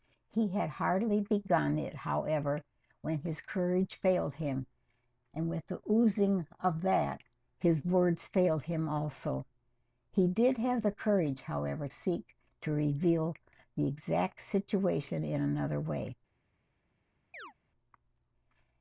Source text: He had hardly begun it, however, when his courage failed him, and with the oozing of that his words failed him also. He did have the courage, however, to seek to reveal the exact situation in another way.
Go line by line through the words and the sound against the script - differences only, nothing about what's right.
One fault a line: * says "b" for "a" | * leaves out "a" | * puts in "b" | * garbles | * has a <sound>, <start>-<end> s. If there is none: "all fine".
* leaves out "to"
* has a chirp, 17.3-17.5 s